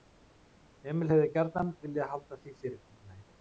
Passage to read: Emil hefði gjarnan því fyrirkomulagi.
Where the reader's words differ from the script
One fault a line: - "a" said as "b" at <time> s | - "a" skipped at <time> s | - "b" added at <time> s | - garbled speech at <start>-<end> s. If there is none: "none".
- "viljað halda" added at 1.9 s